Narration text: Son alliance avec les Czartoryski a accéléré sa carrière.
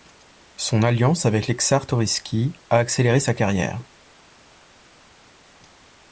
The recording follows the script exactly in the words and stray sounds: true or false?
true